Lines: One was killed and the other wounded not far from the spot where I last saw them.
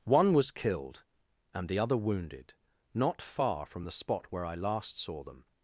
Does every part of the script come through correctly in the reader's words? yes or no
yes